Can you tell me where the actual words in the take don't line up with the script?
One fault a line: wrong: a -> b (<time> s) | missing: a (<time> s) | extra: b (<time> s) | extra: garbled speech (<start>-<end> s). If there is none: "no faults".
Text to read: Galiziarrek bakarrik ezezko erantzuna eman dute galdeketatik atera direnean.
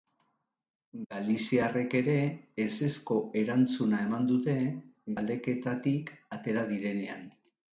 wrong: bakarrik -> ere (2.0 s)